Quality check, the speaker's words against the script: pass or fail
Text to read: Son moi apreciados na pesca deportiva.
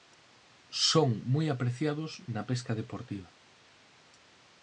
pass